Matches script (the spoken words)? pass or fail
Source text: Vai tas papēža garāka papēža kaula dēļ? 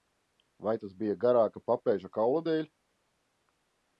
fail